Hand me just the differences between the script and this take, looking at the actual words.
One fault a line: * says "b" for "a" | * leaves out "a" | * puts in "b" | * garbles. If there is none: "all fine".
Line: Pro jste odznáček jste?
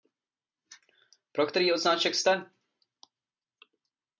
* says "který" for "jste"